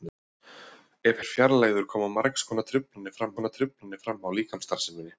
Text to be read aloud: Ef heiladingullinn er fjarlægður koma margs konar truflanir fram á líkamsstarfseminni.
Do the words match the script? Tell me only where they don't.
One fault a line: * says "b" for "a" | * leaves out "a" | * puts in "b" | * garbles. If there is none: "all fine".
* leaves out "heiladingullinn"
* puts in "konar truflanir fram"